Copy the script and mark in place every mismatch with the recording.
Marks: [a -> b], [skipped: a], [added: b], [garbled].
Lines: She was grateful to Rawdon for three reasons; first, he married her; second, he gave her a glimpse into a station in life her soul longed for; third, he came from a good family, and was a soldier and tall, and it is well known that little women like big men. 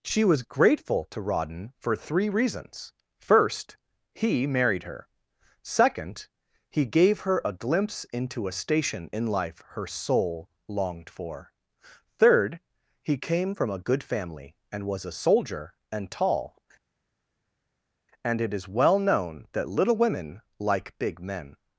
She was grateful to Rawdon for three reasons; first, he married her; second, he gave her a glimpse into a station in life her soul longed for; third, he came from a good family, and was a soldier and tall, and it is well known that little women like big men.